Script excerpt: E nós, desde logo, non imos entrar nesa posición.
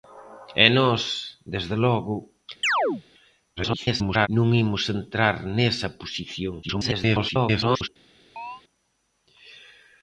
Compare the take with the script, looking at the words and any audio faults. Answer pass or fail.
fail